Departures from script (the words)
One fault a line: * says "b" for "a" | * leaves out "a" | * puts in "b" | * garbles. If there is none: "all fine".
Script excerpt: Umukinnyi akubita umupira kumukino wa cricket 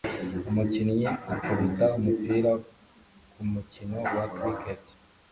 all fine